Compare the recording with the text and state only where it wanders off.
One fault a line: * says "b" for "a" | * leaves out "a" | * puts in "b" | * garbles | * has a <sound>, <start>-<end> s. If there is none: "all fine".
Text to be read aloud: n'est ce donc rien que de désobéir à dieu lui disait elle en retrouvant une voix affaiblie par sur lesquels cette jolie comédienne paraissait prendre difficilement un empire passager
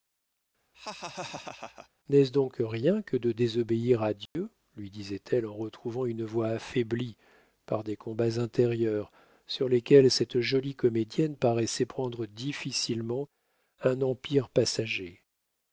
* has a laugh, 0.7-1.9 s
* has a dropout, 4.3-4.4 s
* puts in "des combats intérieurs"